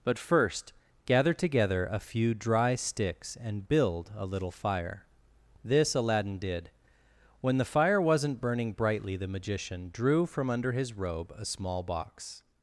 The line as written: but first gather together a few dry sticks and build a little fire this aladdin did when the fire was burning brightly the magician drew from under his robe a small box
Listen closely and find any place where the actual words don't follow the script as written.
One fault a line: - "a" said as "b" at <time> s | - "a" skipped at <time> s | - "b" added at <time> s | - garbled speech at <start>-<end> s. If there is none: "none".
- "was" said as "wasn't" at 8.0 s